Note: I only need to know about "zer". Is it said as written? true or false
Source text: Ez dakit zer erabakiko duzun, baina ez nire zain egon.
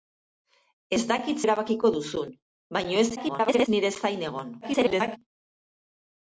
false